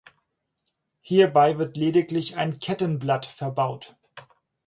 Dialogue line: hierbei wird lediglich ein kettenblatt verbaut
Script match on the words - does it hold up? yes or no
yes